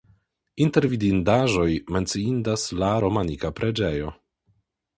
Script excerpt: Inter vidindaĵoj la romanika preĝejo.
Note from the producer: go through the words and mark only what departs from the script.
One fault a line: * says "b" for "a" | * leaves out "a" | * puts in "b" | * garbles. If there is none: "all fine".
* puts in "menciindas"